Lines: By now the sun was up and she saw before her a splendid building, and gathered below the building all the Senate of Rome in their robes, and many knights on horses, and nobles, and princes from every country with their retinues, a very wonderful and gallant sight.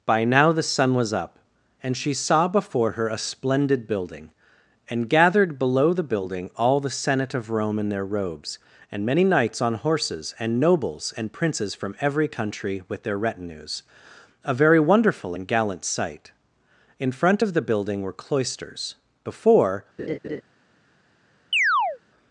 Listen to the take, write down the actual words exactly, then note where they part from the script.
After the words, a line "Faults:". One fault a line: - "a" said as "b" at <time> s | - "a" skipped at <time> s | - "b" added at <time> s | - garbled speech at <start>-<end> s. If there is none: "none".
By now the sun was up and she saw before her a splendid building, and gathered below the building all the Senate of Rome in their robes, and many knights on horses, and nobles, and princes from every country with their retinues, a very wonderful and gallant sight. In front of the building were cloisters, before
Faults:
- "In front of the building were cloisters before" added at 17.0 s